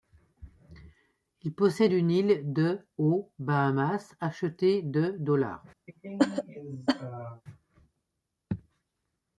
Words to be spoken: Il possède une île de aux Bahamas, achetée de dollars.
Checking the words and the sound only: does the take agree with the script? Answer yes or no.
no